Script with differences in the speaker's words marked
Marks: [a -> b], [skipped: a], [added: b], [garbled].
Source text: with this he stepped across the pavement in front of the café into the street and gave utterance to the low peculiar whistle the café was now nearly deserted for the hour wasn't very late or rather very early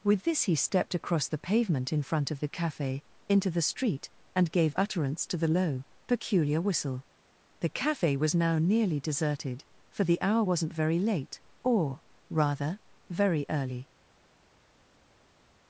with this he stepped across the pavement in front of the café into the street and gave utterance to the low peculiar whistle the café was now nearly deserted for the hour wasn't very late or rather very early